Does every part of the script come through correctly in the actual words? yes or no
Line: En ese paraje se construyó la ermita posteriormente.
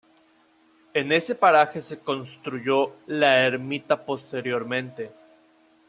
yes